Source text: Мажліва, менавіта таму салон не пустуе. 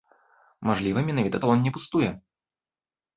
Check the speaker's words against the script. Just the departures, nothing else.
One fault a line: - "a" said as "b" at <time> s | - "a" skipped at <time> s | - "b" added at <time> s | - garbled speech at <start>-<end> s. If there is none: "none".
- "таму" skipped at 1.4 s